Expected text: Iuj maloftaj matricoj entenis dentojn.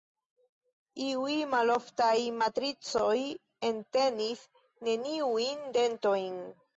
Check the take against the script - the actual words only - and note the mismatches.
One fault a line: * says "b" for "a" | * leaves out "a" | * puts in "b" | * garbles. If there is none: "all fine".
* puts in "neniujn"